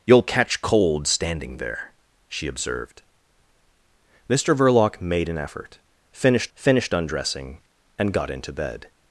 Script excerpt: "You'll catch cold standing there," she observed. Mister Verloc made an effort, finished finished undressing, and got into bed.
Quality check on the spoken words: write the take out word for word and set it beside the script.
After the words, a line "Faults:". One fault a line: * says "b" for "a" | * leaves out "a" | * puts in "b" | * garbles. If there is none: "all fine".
"You'll catch cold standing there," she observed. Mister Verloc made an effort, finished finished undressing, and got into bed.
Faults:
all fine